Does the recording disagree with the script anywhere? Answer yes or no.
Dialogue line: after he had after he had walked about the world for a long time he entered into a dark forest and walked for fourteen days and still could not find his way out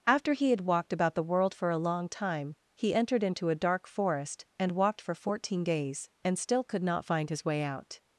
yes